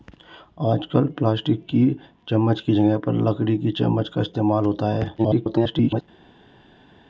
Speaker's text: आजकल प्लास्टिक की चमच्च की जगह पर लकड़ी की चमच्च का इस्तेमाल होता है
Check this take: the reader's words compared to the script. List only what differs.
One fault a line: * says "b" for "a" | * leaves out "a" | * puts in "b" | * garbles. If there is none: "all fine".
* garbles